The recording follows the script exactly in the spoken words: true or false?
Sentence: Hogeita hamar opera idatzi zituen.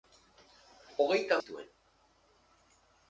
false